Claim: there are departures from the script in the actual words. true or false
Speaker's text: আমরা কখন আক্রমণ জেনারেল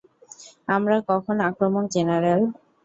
false